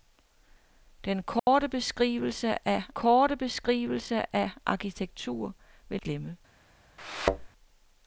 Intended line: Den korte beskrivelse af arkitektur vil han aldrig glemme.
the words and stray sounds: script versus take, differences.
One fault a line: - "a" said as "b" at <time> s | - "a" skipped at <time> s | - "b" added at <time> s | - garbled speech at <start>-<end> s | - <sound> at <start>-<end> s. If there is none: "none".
- dropout at 1.4-1.5 s
- "korte beskrivelse af" added at 2.9 s
- "han aldrig" skipped at 6.0 s
- thud at 7.0-7.5 s